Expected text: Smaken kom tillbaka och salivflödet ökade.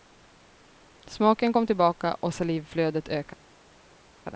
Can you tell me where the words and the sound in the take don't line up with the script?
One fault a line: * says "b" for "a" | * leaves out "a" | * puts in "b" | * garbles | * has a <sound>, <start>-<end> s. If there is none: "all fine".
all fine